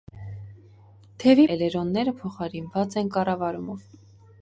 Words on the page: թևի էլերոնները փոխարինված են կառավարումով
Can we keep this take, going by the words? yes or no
yes